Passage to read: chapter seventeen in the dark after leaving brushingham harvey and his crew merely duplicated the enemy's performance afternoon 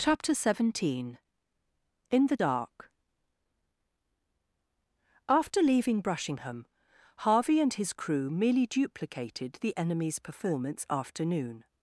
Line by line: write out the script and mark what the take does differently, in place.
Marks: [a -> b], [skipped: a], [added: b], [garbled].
chapter seventeen in the dark after leaving brushingham harvey and his crew merely duplicated the enemy's performance afternoon